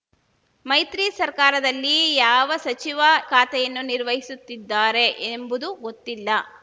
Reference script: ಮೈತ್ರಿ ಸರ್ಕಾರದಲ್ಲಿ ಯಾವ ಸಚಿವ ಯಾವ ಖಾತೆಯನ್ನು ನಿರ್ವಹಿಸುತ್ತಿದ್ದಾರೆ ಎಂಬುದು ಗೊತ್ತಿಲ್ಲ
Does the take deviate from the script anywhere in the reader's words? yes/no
yes